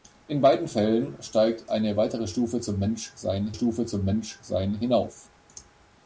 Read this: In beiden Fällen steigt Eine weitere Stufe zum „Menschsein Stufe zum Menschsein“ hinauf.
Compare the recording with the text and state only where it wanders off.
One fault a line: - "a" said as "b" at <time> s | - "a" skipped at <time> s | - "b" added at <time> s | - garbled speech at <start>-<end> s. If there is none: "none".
none